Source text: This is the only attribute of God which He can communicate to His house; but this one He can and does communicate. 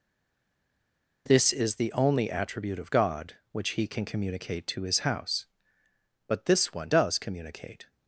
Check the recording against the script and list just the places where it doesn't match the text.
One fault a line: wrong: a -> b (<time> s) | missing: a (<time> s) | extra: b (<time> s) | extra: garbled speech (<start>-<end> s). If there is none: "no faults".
missing: He can and (6.9 s)